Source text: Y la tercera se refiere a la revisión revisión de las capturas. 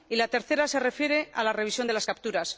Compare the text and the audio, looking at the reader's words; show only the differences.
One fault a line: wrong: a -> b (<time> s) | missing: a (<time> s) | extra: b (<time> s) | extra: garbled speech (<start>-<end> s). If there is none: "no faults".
missing: revisión (1.9 s)